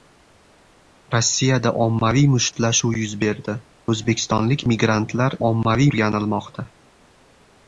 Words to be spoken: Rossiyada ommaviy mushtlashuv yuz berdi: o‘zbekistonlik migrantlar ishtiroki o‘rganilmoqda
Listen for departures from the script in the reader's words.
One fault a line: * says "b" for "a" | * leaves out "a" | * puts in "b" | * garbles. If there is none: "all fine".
* says "ommaviy" for "ishtiroki"